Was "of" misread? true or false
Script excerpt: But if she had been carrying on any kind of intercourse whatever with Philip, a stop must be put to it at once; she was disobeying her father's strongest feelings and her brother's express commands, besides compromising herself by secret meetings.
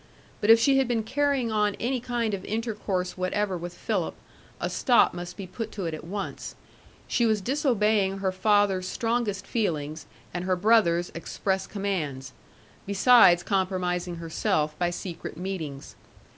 false